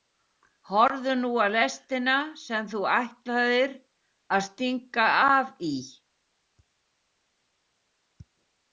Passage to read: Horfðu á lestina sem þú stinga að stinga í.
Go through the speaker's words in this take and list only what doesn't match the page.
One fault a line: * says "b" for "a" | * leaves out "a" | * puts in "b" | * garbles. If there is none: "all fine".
* puts in "nú"
* says "ætlaðir" for "stinga"
* puts in "af"